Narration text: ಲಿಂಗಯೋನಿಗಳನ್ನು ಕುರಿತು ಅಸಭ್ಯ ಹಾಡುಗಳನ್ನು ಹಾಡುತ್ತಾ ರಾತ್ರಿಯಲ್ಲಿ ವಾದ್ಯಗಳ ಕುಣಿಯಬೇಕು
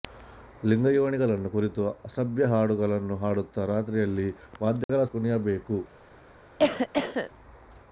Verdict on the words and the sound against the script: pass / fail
fail